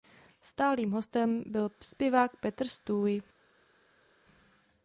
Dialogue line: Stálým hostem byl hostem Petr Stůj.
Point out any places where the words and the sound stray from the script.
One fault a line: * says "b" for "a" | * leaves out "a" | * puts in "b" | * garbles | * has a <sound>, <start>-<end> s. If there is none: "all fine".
* says "zpěvák" for "hostem"